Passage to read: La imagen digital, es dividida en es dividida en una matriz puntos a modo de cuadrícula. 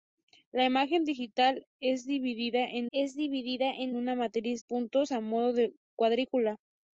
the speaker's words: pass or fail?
pass